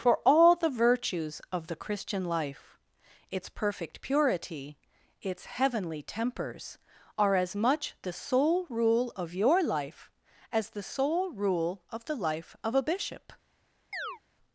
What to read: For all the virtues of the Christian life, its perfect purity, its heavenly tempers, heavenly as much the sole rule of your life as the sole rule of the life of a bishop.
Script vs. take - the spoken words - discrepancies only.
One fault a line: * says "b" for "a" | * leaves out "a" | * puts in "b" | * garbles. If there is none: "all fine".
* says "are" for "heavenly"